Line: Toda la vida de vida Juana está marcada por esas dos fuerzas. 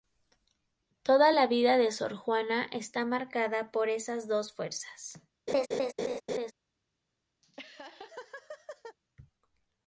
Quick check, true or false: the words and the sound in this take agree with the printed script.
false